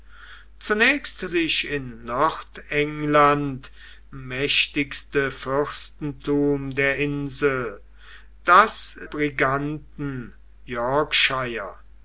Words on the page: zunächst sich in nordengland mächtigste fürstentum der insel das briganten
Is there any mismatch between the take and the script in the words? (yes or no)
no